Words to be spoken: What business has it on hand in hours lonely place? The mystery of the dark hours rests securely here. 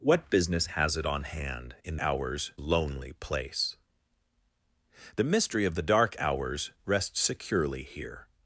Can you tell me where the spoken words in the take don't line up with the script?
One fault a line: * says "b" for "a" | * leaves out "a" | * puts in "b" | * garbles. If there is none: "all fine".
all fine